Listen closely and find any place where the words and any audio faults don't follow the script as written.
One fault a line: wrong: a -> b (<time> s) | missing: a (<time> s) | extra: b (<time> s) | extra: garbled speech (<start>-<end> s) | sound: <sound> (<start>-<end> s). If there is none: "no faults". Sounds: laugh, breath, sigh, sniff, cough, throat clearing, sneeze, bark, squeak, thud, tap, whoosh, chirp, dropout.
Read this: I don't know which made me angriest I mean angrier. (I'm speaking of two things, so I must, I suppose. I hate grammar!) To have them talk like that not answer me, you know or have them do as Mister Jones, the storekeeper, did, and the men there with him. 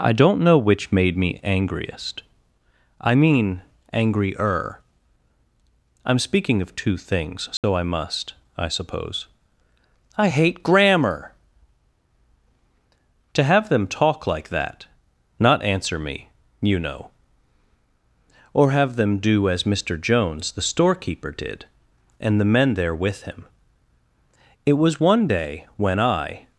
sound: dropout (7.6-7.6 s)
extra: It was one day when I (24.7 s)